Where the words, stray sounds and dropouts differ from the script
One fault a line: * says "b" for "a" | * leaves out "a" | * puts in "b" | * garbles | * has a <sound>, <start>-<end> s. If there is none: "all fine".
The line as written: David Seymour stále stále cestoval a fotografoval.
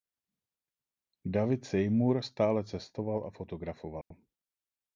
* leaves out "stále"
* has a dropout, 4.0-4.1 s